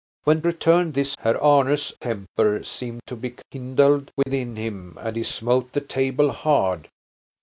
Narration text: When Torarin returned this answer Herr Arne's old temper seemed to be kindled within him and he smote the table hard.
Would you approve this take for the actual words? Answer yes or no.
no